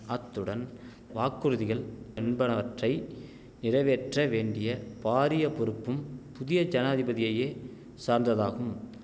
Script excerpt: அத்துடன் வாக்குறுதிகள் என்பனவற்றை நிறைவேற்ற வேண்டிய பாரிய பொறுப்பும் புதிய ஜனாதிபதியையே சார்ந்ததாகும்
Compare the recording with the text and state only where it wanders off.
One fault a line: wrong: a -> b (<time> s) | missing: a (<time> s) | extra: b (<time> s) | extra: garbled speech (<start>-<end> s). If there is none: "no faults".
no faults